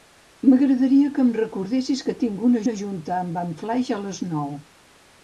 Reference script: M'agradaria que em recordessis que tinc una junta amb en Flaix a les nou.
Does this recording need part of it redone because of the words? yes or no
yes